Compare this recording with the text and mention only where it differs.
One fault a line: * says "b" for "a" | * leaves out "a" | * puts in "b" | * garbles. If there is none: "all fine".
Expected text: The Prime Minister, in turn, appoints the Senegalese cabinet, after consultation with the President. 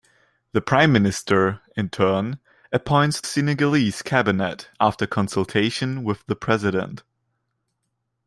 * leaves out "the"